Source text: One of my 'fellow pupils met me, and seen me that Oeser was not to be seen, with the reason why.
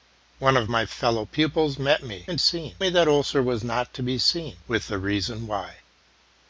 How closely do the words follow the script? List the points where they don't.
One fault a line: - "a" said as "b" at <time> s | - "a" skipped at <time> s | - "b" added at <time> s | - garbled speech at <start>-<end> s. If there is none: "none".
none